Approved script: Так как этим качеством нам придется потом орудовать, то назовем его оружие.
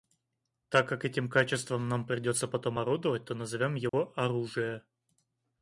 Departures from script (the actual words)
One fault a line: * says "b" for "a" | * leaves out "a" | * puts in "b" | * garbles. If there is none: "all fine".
all fine